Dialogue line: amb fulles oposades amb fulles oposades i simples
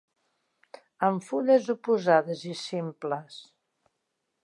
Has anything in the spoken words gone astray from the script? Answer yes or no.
yes